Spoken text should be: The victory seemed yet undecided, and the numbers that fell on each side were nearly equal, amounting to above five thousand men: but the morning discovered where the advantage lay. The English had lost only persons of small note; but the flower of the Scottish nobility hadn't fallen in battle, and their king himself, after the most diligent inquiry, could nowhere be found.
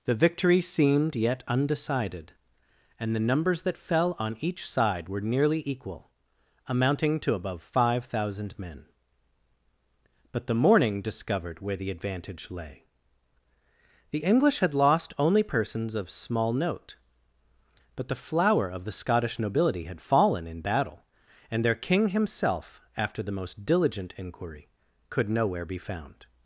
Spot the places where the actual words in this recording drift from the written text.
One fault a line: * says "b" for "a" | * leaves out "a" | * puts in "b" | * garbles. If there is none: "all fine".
* says "had" for "hadn't"